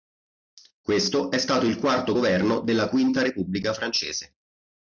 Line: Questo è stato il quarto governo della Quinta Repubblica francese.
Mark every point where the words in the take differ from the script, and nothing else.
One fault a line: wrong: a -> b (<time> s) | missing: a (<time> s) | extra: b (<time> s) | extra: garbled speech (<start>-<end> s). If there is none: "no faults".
no faults